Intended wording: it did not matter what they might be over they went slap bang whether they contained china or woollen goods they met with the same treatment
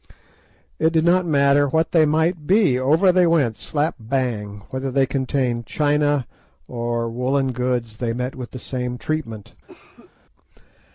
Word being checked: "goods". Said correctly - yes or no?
yes